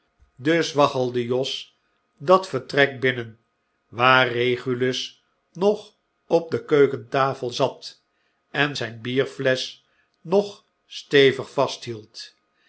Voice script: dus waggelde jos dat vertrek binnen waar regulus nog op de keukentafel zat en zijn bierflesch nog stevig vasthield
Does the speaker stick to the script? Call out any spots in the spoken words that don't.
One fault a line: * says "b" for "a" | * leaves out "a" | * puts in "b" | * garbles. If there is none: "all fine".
all fine